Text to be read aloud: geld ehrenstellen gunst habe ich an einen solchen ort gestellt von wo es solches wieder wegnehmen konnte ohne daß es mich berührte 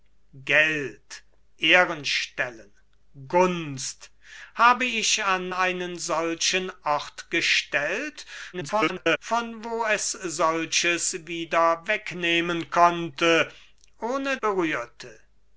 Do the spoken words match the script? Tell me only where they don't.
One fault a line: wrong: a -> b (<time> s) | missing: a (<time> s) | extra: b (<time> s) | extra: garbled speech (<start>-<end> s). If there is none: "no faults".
extra: garbled speech (8.5-9.2 s)
missing: daß es mich (14.4 s)